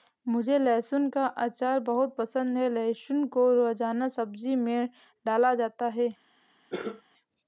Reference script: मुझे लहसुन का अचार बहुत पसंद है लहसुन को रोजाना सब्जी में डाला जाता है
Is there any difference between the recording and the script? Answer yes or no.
no